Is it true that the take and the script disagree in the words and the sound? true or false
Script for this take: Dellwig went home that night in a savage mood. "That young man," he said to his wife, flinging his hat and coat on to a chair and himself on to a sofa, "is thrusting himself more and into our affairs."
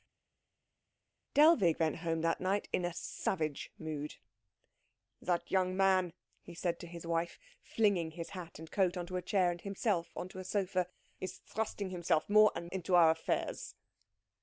false